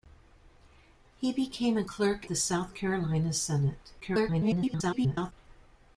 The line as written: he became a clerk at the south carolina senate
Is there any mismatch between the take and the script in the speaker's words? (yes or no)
yes